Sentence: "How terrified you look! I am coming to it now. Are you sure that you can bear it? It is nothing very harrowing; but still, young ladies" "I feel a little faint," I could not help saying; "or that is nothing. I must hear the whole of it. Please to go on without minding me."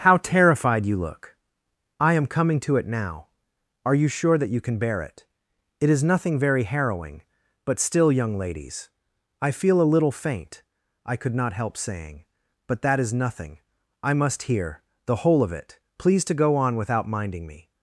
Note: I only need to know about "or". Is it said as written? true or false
false